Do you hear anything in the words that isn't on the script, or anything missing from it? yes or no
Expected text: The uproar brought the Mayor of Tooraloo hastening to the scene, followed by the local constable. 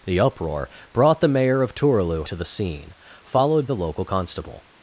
yes